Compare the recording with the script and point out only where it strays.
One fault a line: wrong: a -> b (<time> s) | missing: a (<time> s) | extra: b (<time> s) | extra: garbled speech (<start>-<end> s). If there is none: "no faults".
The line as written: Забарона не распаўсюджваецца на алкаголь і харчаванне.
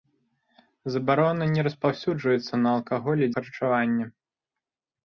no faults